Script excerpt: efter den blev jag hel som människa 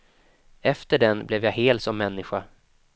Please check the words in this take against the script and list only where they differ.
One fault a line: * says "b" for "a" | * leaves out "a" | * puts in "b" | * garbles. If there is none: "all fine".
all fine